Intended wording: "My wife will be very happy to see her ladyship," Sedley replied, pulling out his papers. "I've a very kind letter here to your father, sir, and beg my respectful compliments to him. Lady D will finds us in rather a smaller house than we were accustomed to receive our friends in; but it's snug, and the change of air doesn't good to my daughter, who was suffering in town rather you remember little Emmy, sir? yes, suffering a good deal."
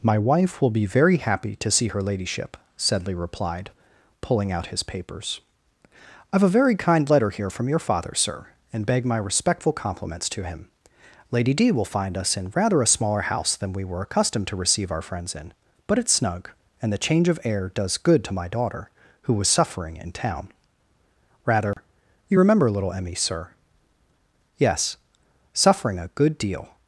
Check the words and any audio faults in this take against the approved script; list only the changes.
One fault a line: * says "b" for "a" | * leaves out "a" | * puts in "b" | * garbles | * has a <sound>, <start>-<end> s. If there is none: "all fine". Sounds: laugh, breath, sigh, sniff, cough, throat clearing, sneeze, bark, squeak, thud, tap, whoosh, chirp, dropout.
* says "from" for "to"
* says "find" for "finds"
* says "does" for "doesn't"
* has a dropout, 21.7-21.8 s